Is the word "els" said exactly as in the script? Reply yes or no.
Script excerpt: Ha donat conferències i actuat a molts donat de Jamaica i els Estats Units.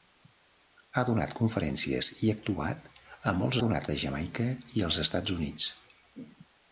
yes